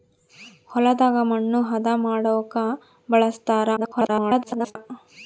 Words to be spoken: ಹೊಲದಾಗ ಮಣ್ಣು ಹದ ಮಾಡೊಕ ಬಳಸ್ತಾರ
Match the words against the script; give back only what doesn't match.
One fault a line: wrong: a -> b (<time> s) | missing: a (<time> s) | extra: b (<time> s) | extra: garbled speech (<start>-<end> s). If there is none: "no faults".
extra: garbled speech (3.8-4.8 s)